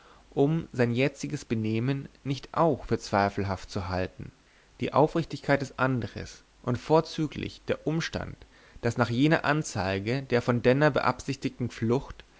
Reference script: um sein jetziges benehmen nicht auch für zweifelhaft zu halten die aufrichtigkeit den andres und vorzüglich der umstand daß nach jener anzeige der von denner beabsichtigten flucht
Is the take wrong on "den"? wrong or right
wrong